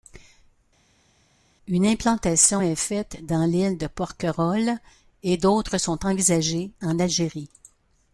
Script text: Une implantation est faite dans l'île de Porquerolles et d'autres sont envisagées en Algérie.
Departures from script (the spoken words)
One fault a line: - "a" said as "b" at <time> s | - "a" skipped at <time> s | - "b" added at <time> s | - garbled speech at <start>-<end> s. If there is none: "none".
none